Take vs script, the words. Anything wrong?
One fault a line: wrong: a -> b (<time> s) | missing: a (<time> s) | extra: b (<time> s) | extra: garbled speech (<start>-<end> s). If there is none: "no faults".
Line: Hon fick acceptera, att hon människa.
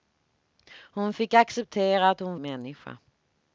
no faults